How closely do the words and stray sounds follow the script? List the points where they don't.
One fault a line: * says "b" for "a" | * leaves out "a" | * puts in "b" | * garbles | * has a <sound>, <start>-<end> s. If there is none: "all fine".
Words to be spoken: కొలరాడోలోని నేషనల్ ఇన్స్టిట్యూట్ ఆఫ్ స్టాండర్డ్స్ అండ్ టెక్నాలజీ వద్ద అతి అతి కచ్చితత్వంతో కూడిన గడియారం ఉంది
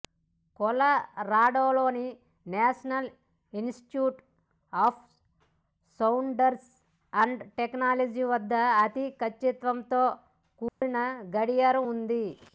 * leaves out "అతి"
* has a dropout, 10.7-10.8 s